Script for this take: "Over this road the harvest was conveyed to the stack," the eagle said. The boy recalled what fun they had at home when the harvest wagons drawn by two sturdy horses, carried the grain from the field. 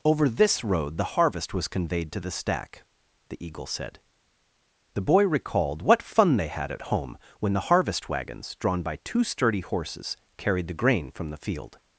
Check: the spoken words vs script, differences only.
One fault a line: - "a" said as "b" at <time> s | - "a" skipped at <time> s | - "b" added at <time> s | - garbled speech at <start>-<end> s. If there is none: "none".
none